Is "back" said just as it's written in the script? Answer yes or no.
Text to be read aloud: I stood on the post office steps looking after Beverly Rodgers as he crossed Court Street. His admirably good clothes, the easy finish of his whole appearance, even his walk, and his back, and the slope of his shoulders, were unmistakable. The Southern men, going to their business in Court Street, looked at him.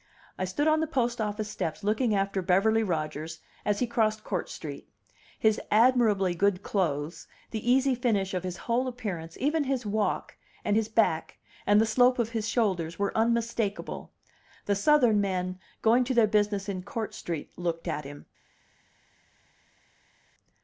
yes